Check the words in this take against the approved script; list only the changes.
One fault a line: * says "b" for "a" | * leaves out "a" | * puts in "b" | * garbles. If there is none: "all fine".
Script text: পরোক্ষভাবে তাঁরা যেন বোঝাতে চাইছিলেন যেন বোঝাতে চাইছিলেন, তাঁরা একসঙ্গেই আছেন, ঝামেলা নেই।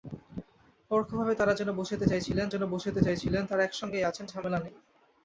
all fine